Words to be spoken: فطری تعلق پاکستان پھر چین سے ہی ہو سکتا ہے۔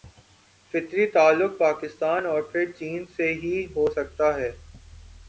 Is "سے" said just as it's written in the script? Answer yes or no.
yes